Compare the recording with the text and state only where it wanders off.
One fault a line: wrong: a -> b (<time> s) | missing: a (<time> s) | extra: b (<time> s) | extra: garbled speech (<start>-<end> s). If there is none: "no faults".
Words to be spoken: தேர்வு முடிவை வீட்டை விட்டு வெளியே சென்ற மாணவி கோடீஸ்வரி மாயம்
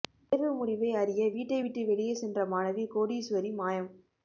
extra: அறிய (1.0 s)